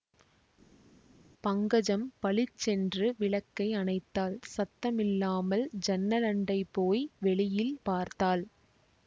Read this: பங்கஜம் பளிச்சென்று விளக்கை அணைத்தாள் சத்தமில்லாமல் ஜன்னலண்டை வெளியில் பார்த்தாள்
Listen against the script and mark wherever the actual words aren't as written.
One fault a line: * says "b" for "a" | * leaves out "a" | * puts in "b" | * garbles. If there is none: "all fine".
* puts in "போய்"